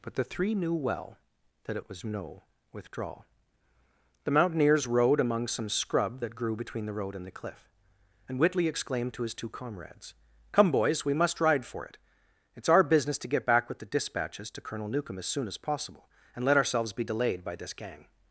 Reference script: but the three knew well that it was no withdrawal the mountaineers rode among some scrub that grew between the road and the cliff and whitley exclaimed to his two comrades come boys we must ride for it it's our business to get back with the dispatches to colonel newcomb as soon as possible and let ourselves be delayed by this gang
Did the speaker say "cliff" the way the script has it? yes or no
yes